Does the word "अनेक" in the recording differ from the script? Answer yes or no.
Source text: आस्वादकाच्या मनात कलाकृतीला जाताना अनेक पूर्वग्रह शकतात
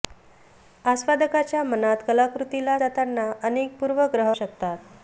no